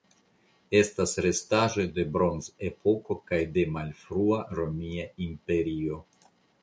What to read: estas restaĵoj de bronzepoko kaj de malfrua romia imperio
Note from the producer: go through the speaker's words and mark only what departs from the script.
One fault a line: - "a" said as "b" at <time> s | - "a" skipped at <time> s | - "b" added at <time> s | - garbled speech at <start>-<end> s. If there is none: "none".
none